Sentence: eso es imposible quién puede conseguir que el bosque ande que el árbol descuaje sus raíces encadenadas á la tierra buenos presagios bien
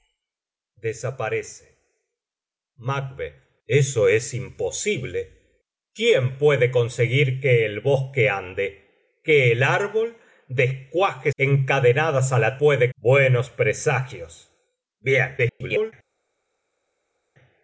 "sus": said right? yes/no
no